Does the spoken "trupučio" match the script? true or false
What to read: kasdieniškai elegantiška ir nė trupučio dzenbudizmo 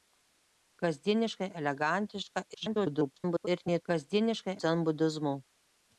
false